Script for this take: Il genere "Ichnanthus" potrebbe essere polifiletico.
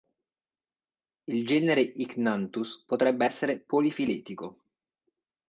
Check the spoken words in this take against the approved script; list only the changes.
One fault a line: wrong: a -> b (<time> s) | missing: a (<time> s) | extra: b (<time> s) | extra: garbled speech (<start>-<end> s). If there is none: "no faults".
no faults